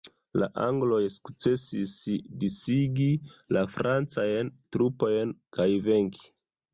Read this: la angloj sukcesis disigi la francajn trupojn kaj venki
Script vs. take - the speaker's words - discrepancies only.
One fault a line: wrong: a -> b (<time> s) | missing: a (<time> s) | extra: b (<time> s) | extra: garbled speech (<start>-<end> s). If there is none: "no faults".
no faults